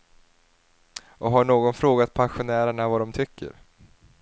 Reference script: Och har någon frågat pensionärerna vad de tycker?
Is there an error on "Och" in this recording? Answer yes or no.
no